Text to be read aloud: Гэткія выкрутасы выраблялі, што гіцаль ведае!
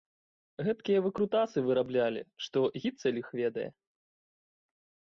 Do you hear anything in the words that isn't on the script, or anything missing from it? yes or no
yes